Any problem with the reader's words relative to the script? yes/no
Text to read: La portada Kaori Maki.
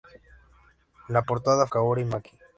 no